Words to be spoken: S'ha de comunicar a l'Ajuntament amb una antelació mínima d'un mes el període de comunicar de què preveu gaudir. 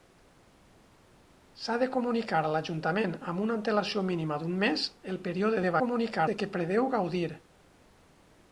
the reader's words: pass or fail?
pass